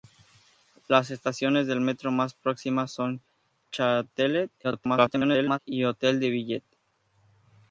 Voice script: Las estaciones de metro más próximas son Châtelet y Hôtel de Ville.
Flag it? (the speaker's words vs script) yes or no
yes